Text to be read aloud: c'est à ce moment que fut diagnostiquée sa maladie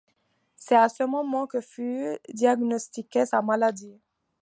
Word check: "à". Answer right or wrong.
right